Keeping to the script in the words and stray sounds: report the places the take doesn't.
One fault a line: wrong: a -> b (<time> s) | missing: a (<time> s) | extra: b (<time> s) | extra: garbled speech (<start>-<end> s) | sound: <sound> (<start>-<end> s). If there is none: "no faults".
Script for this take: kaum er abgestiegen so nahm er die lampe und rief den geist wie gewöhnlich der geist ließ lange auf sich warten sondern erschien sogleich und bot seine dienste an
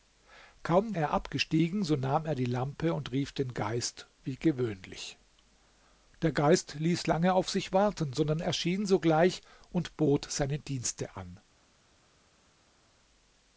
no faults